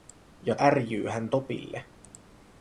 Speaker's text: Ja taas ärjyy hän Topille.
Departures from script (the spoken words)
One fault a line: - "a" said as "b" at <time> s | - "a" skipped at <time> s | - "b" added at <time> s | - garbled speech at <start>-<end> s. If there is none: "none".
- "taas" skipped at 0.6 s